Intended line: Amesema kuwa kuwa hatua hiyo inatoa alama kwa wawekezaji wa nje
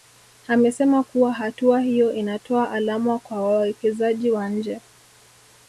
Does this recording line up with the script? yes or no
no